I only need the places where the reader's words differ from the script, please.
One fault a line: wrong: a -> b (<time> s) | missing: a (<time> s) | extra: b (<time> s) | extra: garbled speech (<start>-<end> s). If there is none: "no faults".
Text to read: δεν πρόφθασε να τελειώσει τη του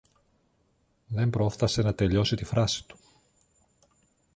extra: φράση (2.4 s)